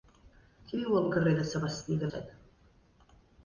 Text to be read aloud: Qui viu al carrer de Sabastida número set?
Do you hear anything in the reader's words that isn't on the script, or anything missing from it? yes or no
yes